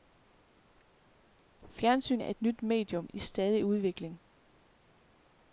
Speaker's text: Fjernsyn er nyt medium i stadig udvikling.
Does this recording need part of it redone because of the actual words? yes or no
yes